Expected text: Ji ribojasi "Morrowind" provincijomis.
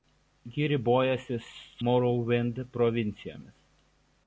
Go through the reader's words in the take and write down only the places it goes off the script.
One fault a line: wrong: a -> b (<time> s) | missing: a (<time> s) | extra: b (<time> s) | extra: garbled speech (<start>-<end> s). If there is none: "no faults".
no faults